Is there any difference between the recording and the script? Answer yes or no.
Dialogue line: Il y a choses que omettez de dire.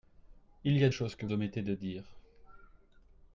no